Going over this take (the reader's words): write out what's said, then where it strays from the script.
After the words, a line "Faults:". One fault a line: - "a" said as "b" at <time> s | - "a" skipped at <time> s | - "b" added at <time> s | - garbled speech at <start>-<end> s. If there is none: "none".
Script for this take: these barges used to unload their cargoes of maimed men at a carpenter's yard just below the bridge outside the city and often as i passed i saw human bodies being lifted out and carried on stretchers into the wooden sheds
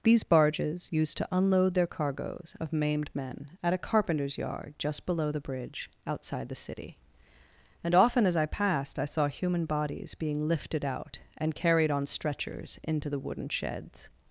these barges used to unload their cargoes of maimed men at a carpenter's yard just below the bridge outside the city and often as i passed i saw human bodies being lifted out and carried on stretchers into the wooden sheds
Faults:
none